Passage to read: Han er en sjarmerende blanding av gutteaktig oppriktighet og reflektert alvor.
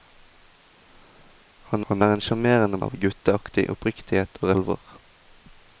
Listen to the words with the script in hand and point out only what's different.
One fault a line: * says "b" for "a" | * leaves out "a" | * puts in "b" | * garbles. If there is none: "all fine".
* puts in "han"
* leaves out "blanding"
* leaves out "reflektert"